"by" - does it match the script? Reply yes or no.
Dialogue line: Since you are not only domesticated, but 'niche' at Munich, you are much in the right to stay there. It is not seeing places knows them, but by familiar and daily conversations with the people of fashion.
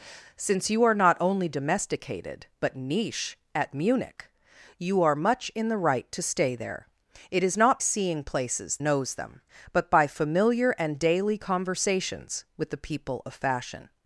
yes